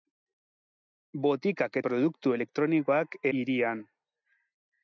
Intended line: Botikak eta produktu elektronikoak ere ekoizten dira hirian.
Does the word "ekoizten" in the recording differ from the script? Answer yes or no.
yes